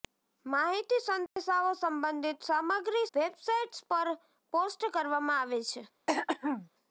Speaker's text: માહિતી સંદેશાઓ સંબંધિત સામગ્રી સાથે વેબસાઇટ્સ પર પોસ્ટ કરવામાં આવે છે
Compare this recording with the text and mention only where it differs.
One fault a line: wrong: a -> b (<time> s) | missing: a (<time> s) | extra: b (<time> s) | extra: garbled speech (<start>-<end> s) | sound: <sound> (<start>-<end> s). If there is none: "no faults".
sound: dropout (1.3-1.4 s)
missing: સાથે (3.0 s)
sound: throat clearing (6.1-6.7 s)